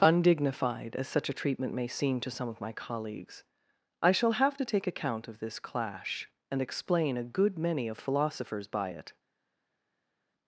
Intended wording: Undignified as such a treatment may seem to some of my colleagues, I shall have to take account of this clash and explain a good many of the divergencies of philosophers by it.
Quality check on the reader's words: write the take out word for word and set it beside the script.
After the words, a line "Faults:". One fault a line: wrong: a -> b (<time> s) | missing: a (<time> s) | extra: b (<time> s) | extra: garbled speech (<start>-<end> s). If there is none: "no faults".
Undignified as such a treatment may seem to some of my colleagues, I shall have to take account of this clash and explain a good many of philosophers by it.
Faults:
missing: the divergencies of (8.0 s)